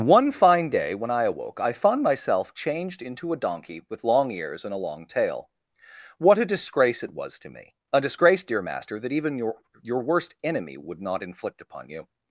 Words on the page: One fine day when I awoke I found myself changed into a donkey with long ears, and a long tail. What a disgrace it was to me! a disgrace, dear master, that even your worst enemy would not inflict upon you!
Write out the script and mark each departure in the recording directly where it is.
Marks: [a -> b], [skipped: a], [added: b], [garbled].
One fine day when I awoke I found myself changed into a donkey with long ears, and a long tail. What a disgrace it was to me! a disgrace, dear master, that even your [added: your] worst enemy would not inflict upon you!